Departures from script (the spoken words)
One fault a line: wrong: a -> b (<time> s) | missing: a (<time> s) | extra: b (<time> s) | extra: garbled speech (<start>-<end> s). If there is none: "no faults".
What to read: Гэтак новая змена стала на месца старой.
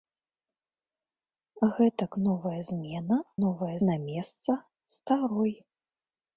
wrong: стала -> новая (3.4 s)